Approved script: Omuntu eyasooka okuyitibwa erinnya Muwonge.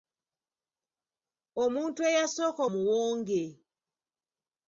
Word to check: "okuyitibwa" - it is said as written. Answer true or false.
false